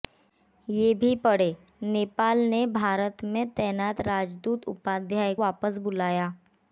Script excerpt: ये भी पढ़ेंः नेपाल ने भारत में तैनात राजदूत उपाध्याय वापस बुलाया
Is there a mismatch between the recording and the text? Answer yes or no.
no